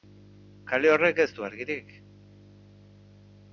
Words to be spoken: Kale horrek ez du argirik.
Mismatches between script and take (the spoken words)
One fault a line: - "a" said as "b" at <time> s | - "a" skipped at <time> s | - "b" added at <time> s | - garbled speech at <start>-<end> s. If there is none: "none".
none